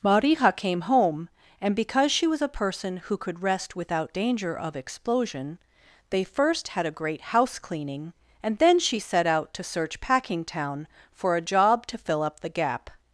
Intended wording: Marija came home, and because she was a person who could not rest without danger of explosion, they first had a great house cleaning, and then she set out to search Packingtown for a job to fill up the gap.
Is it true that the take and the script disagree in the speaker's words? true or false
true